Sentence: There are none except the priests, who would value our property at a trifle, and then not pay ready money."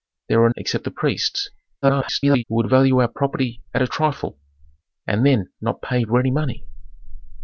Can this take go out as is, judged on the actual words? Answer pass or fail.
fail